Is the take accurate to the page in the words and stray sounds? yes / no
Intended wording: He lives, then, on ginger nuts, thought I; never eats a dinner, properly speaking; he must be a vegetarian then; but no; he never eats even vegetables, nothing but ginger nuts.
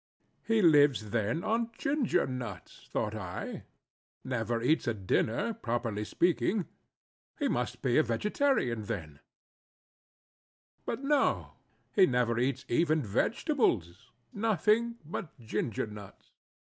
yes